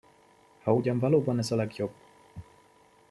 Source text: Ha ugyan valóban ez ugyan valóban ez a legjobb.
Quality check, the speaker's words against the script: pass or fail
fail